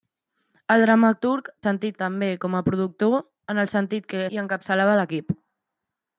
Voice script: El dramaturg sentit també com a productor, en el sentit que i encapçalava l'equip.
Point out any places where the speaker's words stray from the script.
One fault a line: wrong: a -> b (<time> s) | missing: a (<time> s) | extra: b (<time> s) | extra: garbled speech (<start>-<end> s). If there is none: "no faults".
no faults